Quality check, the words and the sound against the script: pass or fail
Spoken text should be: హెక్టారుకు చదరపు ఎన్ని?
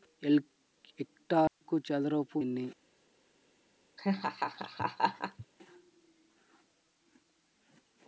fail